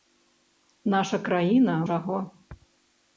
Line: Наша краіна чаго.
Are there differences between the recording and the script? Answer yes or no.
no